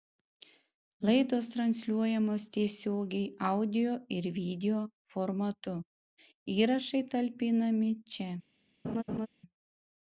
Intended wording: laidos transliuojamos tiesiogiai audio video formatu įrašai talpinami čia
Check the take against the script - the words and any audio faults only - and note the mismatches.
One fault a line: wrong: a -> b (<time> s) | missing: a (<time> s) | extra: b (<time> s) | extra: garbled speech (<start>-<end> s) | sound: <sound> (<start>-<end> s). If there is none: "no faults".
extra: ir (4.2 s)
sound: laugh (8.8-9.3 s)